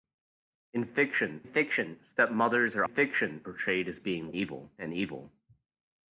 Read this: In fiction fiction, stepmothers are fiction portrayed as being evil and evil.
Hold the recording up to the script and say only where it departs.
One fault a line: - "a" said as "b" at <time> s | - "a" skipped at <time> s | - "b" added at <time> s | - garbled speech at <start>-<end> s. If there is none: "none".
none